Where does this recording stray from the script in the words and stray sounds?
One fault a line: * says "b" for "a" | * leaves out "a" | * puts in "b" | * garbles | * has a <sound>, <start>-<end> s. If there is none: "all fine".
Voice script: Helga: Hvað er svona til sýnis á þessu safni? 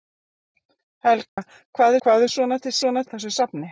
* has a dropout, 1.3-1.4 s
* puts in "Hvað"
* says "svona" for "sýnis"